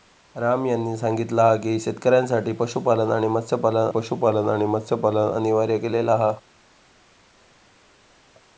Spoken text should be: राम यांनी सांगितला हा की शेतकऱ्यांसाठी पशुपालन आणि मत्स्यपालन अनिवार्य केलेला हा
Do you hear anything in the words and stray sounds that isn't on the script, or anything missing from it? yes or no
yes